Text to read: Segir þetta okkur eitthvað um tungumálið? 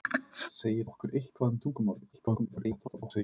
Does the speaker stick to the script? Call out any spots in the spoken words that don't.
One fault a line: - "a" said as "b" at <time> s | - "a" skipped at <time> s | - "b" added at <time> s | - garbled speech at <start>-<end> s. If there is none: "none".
- "þetta" skipped at 0.9 s
- garbled speech at 2.1-3.2 s